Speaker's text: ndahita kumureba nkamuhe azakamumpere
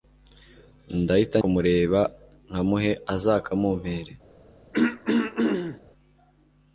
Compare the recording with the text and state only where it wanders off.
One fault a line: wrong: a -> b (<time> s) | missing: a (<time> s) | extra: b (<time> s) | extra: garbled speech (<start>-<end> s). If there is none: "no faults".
no faults